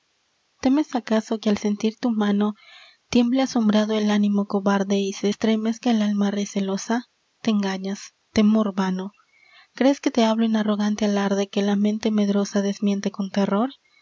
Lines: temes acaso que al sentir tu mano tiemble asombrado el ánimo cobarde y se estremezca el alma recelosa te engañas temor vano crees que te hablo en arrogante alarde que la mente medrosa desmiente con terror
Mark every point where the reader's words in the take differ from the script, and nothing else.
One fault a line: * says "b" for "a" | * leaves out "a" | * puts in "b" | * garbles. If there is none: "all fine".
all fine